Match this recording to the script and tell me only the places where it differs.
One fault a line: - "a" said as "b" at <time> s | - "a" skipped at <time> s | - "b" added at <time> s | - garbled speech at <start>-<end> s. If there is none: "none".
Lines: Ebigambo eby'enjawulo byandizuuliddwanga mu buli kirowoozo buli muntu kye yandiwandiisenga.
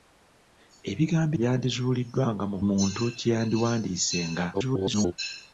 - "eby'enjawulo" skipped at 1.4 s
- "buli kirowoozo buli" skipped at 2.6 s
- garbled speech at 4.5-5.1 s